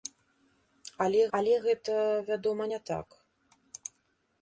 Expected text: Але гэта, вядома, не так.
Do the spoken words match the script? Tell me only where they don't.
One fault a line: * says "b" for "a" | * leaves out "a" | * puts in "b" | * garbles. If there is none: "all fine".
* puts in "але"